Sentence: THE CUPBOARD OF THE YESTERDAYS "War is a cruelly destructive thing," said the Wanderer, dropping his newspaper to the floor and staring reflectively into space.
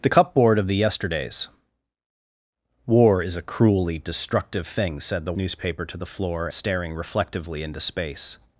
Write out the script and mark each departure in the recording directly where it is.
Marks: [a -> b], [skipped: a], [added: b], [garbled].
THE CUPBOARD OF THE YESTERDAYS "War is a cruelly destructive thing," said the [skipped: Wanderer, dropping his] newspaper to the floor [skipped: and] staring reflectively into space.